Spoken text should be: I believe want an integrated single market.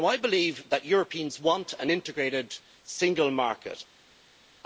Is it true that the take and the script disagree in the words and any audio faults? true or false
true